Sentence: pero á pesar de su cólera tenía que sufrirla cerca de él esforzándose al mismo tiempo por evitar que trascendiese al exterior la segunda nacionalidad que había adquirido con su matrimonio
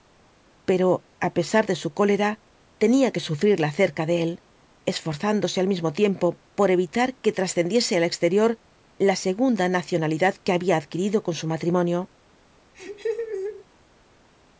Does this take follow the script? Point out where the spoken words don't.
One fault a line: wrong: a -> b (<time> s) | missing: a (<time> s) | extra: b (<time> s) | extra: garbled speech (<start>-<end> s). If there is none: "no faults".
no faults